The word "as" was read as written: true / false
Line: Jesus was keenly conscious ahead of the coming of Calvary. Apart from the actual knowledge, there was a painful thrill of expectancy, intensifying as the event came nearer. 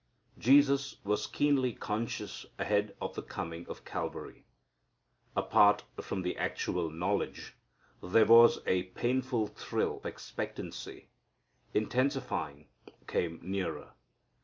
false